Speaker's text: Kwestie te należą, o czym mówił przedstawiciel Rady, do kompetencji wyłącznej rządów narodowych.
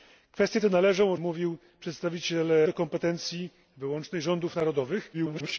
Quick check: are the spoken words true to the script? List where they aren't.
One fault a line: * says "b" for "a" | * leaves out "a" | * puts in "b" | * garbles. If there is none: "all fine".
* leaves out "czym"
* leaves out "Rady"
* garbles